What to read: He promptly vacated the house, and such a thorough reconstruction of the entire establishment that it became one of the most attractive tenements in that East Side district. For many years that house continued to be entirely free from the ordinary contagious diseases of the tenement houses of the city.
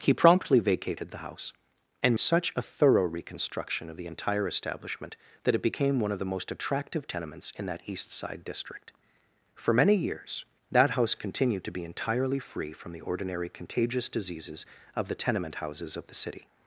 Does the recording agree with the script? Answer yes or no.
yes